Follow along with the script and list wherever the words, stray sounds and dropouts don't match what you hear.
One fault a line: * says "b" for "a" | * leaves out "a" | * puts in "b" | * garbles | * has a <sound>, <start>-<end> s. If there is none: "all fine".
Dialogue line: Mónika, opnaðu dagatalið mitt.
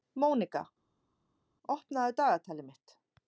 all fine